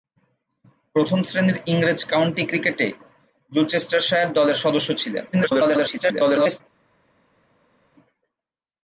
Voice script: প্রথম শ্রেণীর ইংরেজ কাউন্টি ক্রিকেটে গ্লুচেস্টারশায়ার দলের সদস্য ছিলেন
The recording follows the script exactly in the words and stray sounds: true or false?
false